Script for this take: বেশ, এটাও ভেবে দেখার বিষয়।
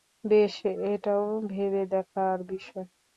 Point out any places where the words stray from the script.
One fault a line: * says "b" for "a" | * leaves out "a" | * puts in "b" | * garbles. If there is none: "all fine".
all fine